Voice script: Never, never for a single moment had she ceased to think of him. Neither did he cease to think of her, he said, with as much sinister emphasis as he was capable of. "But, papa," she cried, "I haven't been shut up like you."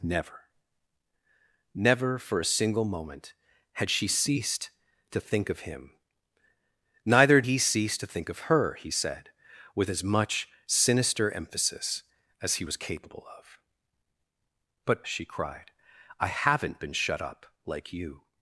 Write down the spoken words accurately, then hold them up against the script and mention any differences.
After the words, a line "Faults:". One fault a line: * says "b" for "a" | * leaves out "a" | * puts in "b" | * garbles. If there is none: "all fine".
Never, never for a single moment had she ceased to think of him. Neither he cease to think of her, he said, with as much sinister emphasis as he was capable of. "But," she cried, "I haven't been shut up like you."
Faults:
* leaves out "did"
* leaves out "papa"